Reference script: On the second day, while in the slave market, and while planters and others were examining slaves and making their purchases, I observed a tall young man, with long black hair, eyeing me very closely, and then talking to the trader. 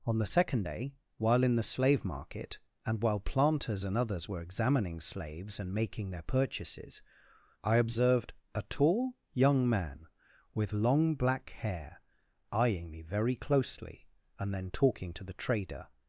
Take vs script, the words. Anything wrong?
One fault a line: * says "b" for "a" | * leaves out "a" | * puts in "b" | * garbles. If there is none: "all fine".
all fine